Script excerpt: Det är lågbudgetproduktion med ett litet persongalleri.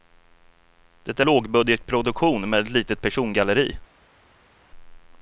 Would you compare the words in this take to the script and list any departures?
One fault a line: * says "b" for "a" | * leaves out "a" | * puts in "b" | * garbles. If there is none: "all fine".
all fine